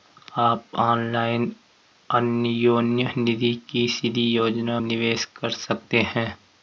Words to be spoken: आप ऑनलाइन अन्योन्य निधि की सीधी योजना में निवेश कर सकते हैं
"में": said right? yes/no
no